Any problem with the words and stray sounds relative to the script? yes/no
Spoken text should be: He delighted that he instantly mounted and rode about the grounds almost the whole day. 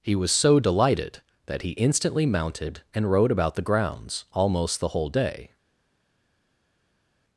yes